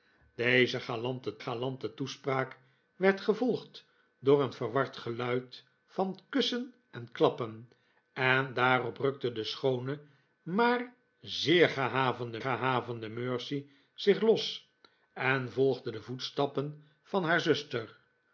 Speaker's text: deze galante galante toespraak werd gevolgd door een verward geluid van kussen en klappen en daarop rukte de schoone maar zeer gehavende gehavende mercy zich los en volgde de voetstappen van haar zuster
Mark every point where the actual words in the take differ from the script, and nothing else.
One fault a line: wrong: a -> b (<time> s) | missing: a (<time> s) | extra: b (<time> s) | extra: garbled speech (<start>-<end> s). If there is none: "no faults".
no faults